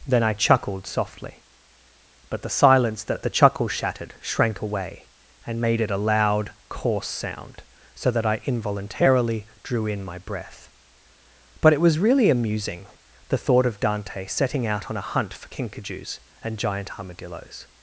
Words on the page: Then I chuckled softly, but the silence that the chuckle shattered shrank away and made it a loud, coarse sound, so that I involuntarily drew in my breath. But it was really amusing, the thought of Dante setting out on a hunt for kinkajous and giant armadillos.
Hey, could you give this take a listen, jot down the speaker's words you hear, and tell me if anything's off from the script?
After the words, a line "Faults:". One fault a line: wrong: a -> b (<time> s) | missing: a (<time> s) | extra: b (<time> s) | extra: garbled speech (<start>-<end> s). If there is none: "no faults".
Then I chuckled softly, but the silence that the chuckle shattered shrank away and made it a loud, coarse sound, so that I involuntarily drew in my breath. But it was really amusing, the thought of Dante setting out on a hunt for kinkajous and giant armadillos.
Faults:
no faults